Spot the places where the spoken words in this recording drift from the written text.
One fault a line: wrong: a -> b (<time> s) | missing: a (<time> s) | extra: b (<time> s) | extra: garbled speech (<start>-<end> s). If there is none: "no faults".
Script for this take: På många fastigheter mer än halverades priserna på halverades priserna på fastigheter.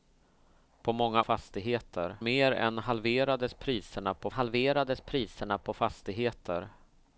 no faults